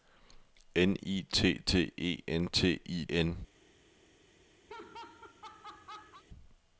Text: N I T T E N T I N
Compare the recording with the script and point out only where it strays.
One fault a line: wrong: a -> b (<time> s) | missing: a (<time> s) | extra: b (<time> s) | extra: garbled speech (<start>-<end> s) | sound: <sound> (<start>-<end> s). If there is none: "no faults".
sound: laugh (4.7-6.2 s)